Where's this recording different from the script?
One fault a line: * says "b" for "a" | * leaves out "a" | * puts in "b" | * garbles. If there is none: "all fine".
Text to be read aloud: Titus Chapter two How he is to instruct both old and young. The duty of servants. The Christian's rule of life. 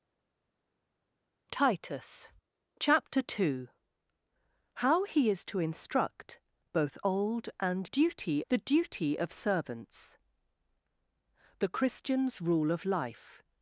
* says "duty" for "young"